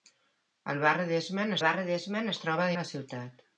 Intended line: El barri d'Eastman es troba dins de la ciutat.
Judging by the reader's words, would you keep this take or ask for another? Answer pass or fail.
fail